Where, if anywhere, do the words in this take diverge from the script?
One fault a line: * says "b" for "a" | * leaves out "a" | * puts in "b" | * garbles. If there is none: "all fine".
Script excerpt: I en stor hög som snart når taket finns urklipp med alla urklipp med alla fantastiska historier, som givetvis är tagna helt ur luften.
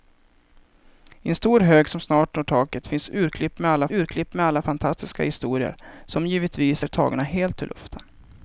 all fine